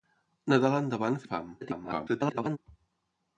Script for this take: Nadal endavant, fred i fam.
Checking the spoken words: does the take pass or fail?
fail